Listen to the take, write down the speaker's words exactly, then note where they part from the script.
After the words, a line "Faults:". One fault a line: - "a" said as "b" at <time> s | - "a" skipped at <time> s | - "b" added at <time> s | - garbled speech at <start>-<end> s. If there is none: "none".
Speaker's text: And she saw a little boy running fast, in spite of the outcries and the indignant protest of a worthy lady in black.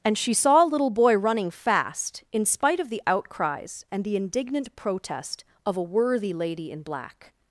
And she saw a little boy running fast, in spite of the outcries and the indignant protest of a worthy lady in black.
Faults:
none